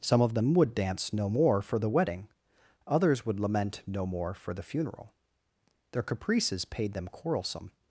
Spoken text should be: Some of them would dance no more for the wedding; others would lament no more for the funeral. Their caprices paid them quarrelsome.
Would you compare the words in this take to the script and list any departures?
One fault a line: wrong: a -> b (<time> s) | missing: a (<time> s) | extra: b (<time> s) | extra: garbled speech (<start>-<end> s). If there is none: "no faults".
no faults